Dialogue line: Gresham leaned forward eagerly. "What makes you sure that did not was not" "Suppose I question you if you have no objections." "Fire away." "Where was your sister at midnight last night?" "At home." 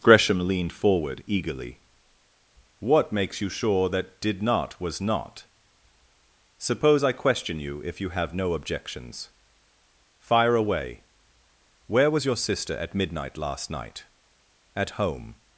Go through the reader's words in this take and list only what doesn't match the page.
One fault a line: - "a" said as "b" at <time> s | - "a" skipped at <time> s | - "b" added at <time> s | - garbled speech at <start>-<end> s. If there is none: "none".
none